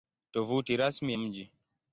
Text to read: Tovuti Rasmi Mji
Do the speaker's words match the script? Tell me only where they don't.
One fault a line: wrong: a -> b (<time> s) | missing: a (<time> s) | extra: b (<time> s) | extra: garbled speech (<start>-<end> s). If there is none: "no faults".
no faults